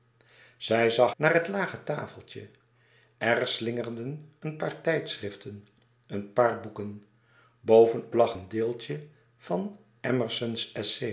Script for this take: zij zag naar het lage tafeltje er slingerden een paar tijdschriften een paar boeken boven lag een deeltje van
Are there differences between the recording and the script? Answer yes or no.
no